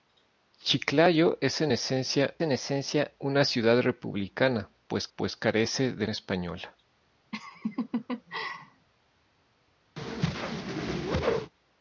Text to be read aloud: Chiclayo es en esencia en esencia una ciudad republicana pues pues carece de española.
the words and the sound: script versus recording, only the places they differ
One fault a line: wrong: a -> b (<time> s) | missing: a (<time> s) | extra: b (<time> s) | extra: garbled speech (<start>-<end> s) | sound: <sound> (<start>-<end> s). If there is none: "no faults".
sound: laugh (7.3-8.9 s)
sound: whoosh (10.0-11.5 s)